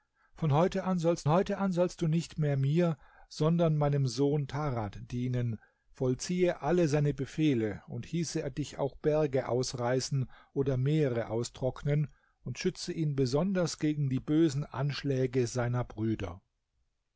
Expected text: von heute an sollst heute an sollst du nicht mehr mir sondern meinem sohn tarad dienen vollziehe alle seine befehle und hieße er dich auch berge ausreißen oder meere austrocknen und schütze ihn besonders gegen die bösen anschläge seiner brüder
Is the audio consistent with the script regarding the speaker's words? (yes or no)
yes